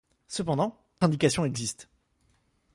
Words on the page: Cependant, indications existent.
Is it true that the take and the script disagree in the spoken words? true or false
false